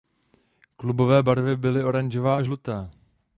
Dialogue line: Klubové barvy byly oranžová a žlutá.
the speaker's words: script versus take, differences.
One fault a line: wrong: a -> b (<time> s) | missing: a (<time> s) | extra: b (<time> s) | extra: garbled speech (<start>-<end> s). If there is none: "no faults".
no faults